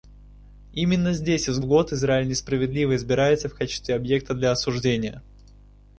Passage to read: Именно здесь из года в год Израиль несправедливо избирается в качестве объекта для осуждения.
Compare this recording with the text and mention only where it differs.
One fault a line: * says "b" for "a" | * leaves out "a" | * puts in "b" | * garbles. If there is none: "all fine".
* leaves out "года"